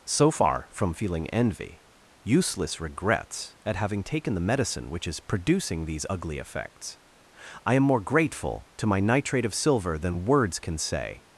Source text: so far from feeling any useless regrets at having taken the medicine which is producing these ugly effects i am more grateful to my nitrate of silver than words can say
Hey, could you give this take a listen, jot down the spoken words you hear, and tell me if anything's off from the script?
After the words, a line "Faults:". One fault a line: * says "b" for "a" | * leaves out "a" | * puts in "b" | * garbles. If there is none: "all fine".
so far from feeling envy useless regrets at having taken the medicine which is producing these ugly effects i am more grateful to my nitrate of silver than words can say
Faults:
* says "envy" for "any"